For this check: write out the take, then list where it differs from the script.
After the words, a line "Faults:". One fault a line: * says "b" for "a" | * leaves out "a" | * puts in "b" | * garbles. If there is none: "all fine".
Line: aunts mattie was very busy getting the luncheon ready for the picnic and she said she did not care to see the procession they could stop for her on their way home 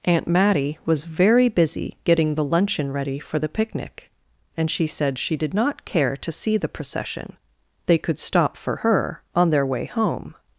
aunt mattie was very busy getting the luncheon ready for the picnic and she said she did not care to see the procession they could stop for her on their way home
Faults:
* says "aunt" for "aunts"